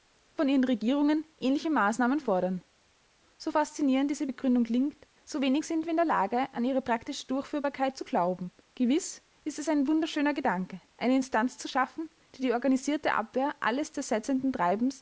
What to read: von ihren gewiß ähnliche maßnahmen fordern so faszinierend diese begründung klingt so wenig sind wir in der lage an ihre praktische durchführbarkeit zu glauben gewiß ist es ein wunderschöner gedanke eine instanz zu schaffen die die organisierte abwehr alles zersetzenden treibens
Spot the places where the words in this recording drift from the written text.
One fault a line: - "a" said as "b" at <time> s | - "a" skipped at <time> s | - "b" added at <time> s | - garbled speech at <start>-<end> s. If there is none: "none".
- "gewiß" said as "regierungen" at 0.6 s